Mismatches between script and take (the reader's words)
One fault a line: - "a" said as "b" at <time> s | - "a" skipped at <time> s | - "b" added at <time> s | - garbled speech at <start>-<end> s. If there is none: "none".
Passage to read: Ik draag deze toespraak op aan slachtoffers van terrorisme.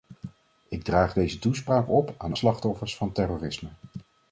none